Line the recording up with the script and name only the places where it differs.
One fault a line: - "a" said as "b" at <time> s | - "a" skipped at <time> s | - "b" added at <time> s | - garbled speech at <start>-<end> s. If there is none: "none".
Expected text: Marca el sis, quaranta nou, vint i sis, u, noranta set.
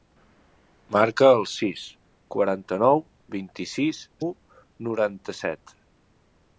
none